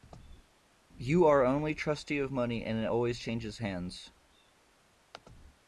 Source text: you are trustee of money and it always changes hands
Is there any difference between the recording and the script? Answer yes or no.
yes